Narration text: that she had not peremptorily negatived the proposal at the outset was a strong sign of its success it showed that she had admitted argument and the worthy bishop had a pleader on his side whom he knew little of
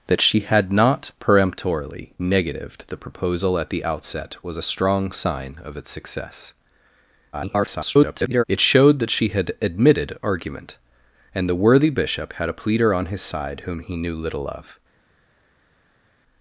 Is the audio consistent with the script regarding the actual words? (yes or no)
no